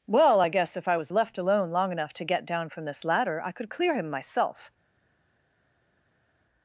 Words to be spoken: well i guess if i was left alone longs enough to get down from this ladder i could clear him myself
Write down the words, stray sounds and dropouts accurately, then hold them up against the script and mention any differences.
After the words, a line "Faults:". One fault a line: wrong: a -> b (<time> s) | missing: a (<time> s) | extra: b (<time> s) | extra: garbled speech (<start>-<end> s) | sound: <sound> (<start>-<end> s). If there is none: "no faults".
well i guess if i was left alone long enough to get down from this ladder i could clear him myself
Faults:
wrong: longs -> long (1.7 s)